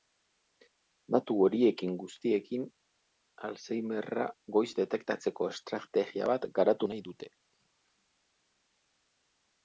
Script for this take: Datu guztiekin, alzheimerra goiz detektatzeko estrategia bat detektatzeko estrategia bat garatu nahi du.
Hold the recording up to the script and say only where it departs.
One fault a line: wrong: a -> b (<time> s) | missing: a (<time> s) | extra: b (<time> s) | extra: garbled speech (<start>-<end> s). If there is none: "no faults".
extra: horiekin (1.5 s)
missing: detektatzeko estrategia bat (6.5 s)
wrong: du -> dute (7.1 s)